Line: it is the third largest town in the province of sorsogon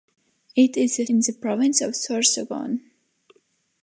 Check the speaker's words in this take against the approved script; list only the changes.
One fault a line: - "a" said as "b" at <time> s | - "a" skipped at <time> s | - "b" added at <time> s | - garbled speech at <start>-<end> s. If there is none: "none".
- "third largest town" skipped at 1.1 s